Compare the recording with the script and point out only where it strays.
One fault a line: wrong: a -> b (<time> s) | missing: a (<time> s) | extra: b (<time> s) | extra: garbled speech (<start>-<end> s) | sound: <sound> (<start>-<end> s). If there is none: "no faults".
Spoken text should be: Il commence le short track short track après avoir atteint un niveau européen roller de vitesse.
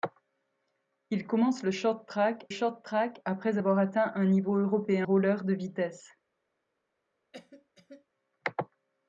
sound: cough (7.3-8.1 s)